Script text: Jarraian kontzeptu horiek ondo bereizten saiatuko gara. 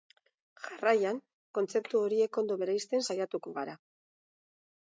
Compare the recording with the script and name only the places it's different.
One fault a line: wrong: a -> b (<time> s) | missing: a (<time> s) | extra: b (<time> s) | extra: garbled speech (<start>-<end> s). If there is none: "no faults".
no faults